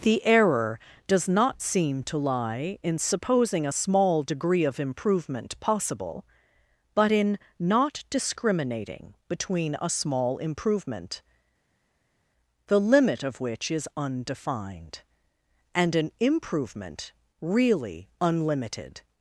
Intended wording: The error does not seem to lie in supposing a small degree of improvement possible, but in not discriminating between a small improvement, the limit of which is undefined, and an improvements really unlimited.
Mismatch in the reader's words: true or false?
true